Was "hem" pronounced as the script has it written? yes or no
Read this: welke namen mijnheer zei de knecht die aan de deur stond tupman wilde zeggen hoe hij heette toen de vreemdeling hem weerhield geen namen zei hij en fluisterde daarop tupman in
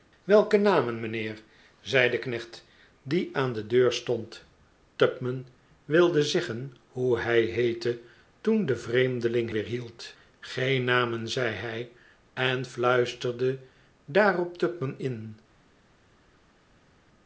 no